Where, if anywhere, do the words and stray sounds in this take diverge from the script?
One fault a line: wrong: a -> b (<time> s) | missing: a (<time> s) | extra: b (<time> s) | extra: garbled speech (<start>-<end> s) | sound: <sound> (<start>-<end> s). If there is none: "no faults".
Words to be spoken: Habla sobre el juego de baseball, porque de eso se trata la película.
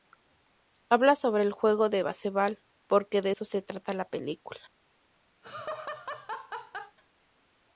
sound: laugh (5.4-7.0 s)